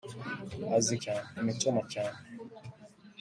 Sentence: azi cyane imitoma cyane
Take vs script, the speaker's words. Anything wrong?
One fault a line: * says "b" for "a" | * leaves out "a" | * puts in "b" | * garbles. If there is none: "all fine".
all fine